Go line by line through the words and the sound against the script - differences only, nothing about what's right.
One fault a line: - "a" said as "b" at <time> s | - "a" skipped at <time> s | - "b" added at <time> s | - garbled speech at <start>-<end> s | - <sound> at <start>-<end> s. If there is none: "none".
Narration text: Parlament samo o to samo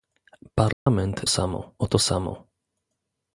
- dropout at 0.7-0.9 s